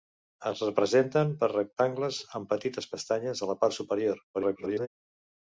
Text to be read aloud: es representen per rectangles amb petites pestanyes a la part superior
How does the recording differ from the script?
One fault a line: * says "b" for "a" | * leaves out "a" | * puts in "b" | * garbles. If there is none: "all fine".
* garbles